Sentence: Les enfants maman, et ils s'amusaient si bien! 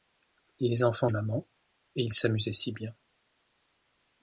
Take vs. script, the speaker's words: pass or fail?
pass